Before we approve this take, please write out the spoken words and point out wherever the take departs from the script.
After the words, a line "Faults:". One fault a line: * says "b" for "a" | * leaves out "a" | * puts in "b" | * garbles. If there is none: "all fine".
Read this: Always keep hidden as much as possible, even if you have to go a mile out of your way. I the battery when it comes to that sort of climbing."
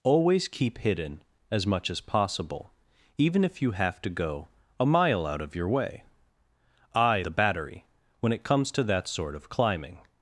Always keep hidden as much as possible, even if you have to go a mile out of your way. I the battery when it comes to that sort of climbing."
Faults:
all fine